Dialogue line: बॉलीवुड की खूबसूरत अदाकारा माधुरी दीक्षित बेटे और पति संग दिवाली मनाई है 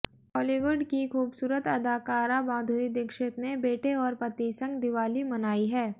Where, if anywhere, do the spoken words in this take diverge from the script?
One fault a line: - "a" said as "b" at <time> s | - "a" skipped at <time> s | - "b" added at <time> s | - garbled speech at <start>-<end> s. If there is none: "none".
- "ने" added at 3.4 s